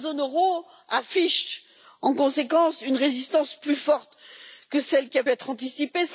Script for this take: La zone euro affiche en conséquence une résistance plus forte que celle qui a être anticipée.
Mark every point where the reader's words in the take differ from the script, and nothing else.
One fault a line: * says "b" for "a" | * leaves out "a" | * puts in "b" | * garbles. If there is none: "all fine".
all fine